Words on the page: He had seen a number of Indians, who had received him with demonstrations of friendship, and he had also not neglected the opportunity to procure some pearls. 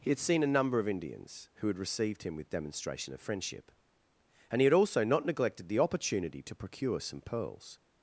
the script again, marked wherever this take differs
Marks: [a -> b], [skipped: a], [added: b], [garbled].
He had seen a number of Indians, who had received him with [demonstrations -> demonstration] of friendship, and he had also not neglected the opportunity to procure some pearls.